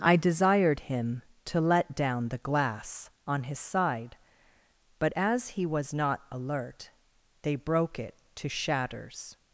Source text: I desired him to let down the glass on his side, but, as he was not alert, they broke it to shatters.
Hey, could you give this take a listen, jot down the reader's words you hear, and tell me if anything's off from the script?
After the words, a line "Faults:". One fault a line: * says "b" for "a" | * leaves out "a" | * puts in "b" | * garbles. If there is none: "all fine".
I desired him to let down the glass on his side, but, as he was not alert, they broke it to shatters.
Faults:
all fine